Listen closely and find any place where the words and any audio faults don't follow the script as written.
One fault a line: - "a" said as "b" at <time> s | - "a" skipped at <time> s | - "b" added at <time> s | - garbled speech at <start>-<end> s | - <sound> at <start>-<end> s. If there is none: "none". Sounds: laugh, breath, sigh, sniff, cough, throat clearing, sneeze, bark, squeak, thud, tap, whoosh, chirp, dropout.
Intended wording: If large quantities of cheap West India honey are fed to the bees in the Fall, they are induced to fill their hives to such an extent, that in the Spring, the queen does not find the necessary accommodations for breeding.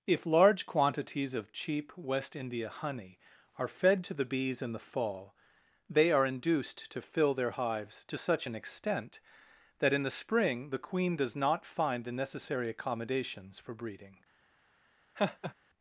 - laugh at 15.2-15.5 s